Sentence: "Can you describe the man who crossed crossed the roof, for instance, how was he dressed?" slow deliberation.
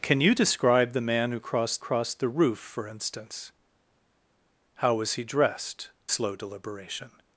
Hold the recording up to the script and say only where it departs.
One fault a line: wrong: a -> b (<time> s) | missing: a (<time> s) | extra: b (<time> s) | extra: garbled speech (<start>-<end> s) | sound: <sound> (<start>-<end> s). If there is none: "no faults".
no faults